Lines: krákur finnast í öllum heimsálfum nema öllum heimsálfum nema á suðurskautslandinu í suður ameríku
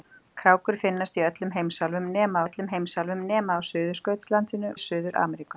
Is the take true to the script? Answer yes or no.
yes